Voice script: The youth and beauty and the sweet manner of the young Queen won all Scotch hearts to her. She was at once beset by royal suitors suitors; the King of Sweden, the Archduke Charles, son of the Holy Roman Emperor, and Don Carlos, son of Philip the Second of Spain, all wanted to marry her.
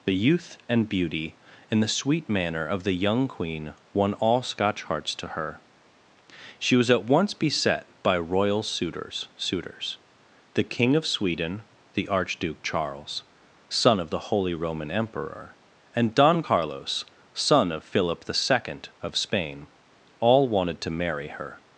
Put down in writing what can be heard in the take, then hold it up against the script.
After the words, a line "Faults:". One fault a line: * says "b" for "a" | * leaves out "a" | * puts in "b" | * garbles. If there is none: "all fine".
The youth and beauty and the sweet manner of the young Queen won all Scotch hearts to her. She was at once beset by royal suitors suitors; the King of Sweden, the Archduke Charles, son of the Holy Roman Emperor, and Don Carlos, son of Philip the Second of Spain, all wanted to marry her.
Faults:
all fine